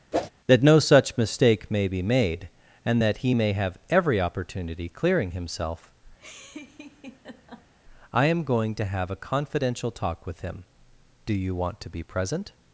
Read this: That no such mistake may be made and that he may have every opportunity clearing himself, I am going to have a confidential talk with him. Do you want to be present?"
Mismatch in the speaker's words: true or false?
false